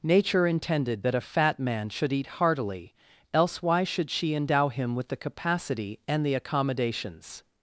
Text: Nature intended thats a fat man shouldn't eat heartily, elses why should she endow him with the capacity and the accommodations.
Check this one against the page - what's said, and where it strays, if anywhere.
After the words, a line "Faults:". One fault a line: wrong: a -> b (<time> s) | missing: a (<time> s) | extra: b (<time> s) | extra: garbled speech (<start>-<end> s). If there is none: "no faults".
Nature intended that a fat man should eat heartily, else why should she endow him with the capacity and the accommodations.
Faults:
wrong: thats -> that (1.0 s)
wrong: shouldn't -> should (1.9 s)
wrong: elses -> else (3.3 s)